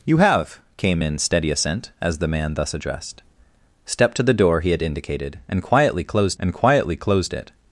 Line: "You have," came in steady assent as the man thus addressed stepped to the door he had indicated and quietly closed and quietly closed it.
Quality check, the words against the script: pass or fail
pass